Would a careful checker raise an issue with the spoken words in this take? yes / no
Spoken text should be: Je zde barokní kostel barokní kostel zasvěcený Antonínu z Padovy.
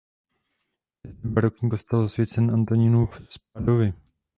yes